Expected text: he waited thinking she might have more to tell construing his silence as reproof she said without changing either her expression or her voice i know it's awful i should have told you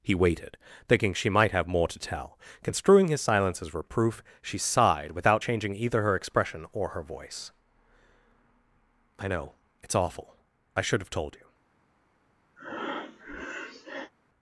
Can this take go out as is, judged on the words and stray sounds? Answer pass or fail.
fail